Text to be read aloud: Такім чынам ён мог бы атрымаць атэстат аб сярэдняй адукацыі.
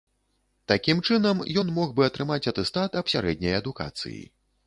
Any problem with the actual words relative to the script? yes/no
no